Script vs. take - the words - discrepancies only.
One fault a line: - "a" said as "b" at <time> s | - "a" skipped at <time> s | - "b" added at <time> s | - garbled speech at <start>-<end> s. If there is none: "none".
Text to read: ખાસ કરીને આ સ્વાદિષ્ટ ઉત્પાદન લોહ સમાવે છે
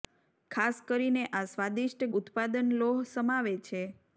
none